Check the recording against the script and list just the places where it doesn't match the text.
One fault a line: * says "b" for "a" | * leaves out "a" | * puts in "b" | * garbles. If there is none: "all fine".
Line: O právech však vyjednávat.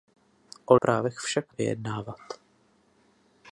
all fine